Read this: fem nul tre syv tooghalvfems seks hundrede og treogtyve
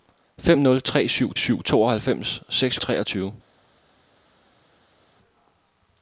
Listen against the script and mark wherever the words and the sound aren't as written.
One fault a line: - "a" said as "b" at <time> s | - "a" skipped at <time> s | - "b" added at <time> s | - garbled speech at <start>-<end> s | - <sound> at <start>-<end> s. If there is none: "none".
- "syv" added at 1.4 s
- "hundrede" skipped at 2.8 s